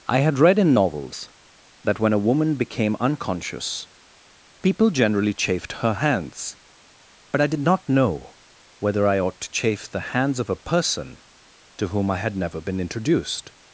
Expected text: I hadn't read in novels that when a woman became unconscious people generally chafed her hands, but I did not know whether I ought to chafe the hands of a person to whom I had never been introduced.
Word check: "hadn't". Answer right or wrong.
wrong